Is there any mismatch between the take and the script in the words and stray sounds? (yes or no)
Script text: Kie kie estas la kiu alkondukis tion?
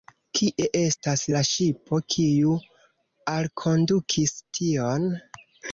yes